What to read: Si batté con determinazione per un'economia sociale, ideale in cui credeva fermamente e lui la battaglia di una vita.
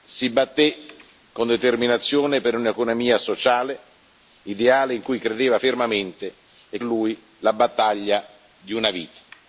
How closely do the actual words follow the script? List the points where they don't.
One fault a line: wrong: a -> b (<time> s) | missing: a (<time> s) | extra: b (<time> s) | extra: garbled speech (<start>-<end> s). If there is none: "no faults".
no faults